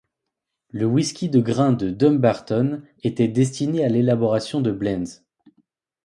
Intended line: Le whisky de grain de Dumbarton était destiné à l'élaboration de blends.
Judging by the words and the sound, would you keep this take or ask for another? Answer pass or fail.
pass